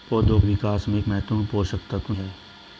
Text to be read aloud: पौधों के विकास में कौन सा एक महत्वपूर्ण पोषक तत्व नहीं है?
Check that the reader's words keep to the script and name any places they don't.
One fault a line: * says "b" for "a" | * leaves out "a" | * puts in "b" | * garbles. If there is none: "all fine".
* leaves out "के"
* leaves out "कौन सा एक"
* leaves out "नहीं"